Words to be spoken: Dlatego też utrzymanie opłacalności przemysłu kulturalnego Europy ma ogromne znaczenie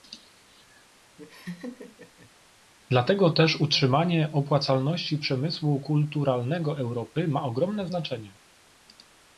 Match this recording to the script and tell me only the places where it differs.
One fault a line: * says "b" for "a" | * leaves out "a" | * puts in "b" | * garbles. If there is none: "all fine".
all fine